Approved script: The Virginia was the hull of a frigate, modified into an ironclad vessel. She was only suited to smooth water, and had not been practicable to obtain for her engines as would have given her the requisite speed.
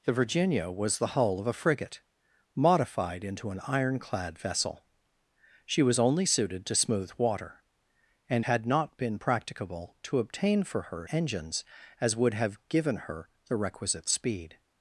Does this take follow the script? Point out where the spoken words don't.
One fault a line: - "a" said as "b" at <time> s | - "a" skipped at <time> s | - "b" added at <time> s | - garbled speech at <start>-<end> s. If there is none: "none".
none